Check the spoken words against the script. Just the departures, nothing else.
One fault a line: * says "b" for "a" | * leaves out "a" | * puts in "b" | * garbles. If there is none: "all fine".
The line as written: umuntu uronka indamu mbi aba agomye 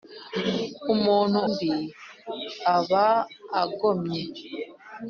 * leaves out "uronka indamu"